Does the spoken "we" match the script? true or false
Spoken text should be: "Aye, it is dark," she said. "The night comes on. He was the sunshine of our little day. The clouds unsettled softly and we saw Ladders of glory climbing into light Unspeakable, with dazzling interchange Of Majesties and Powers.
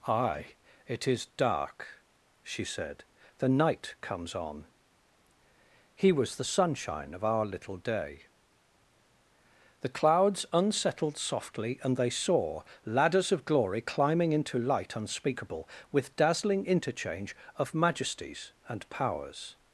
false